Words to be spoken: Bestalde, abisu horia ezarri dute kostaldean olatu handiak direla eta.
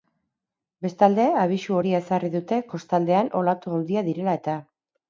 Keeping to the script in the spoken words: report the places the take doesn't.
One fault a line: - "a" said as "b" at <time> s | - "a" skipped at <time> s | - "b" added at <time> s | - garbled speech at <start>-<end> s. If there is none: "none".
none